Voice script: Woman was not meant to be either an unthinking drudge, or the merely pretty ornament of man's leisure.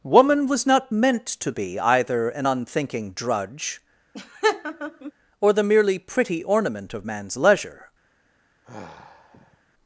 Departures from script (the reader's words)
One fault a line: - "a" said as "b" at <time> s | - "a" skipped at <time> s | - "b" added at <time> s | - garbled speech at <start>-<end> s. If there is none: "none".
none